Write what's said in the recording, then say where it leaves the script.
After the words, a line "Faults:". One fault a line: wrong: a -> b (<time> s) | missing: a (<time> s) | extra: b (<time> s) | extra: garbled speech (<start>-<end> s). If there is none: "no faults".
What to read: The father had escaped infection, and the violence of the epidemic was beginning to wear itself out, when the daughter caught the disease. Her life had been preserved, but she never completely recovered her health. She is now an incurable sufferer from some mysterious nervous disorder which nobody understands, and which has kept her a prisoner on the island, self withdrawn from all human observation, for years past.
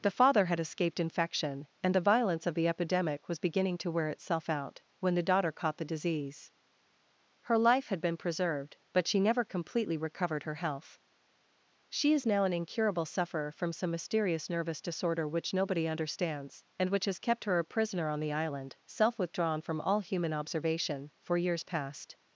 The father had escaped infection, and the violence of the epidemic was beginning to wear itself out, when the daughter caught the disease. Her life had been preserved, but she never completely recovered her health. She is now an incurable sufferer from some mysterious nervous disorder which nobody understands, and which has kept her a prisoner on the island, self withdrawn from all human observation, for years past.
Faults:
no faults